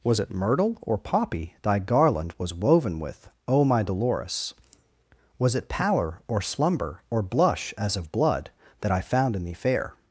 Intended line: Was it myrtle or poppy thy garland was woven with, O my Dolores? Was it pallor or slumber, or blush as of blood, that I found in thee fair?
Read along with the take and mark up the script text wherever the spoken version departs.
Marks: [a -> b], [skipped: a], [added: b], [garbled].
Was it myrtle or poppy thy garland was woven with, O my Dolores? Was it pallor or slumber, or blush as of blood, that I found in thee fair?